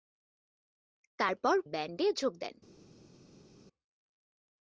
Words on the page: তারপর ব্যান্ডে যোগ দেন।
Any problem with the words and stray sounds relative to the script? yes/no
no